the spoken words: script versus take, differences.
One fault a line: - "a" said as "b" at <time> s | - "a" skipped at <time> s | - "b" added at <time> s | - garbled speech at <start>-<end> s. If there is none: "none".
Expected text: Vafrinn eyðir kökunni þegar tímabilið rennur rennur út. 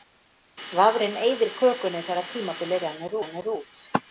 none